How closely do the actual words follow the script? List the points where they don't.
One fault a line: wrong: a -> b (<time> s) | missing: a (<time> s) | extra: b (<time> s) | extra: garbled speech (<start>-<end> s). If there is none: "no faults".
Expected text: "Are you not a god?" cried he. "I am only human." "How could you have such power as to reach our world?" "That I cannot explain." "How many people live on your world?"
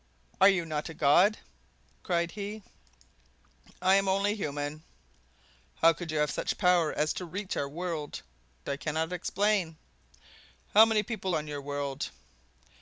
missing: That (8.2 s)
missing: live (11.3 s)